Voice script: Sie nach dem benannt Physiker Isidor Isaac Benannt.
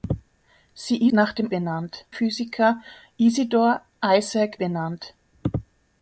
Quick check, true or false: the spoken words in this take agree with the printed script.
true